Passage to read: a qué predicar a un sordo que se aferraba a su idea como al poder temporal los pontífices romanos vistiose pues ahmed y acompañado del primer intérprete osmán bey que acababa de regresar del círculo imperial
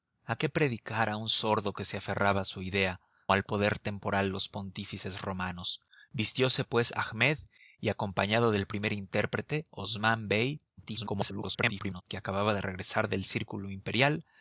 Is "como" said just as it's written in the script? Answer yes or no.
no